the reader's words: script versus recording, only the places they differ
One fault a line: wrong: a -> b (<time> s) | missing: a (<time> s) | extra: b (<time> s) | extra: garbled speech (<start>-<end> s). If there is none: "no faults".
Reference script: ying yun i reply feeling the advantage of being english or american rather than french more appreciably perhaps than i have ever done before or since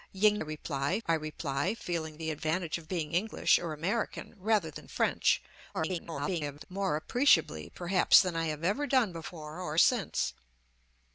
wrong: yun -> reply (0.4 s)
extra: garbled speech (5.7-6.7 s)